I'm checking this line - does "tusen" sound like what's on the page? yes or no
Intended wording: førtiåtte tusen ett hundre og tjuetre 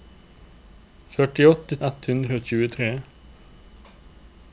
no